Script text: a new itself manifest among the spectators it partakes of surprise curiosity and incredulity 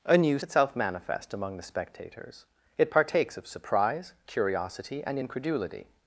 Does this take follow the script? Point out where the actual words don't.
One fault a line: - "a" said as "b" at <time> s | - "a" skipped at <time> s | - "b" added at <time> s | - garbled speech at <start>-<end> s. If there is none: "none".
none